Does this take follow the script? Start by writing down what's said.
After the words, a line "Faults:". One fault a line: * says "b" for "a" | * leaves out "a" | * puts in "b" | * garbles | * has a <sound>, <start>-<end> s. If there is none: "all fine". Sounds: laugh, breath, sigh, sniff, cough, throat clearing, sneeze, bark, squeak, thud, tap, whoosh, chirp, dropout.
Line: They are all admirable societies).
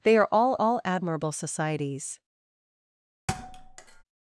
They are all all admirable societies).
Faults:
* puts in "all"
* has a thud, 3.3-4.0 s